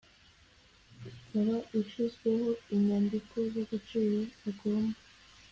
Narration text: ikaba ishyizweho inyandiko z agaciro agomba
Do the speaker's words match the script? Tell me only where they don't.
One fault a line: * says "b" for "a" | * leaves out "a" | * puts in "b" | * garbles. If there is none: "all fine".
all fine